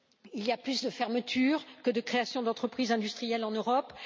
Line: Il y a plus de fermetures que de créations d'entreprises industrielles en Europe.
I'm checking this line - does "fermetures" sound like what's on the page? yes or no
yes